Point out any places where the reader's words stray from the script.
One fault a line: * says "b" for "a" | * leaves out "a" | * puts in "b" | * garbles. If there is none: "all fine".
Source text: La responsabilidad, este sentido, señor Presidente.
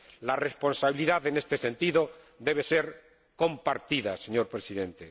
* puts in "en"
* puts in "debe ser compartida"